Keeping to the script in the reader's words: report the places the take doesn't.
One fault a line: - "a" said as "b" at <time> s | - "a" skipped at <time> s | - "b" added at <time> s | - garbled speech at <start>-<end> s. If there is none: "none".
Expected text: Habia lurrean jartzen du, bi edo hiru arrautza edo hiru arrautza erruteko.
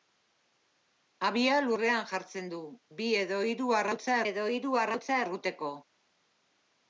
none